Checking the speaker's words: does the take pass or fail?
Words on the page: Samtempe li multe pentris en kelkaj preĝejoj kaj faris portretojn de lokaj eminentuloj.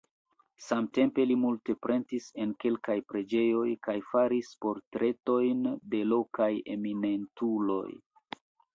pass